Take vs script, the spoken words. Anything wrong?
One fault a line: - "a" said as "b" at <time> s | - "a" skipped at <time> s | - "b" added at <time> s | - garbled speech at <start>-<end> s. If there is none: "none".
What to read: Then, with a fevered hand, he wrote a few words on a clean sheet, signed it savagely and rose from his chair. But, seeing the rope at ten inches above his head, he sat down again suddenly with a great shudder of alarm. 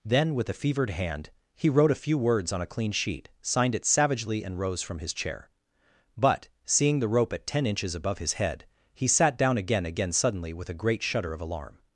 - "again" added at 9.8 s